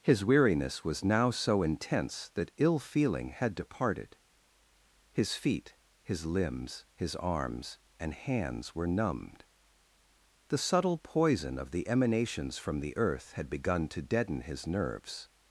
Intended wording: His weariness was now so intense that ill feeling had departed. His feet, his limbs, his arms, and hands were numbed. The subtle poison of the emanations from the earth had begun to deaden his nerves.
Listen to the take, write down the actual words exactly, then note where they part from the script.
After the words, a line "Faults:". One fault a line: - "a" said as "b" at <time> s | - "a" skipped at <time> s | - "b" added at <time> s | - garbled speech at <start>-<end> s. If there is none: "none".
His weariness was now so intense that ill feeling had departed. His feet, his limbs, his arms, and hands were numbed. The subtle poison of the emanations from the earth had begun to deaden his nerves.
Faults:
none